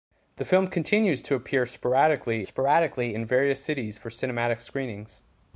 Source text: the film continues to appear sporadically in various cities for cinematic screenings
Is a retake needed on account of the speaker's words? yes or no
yes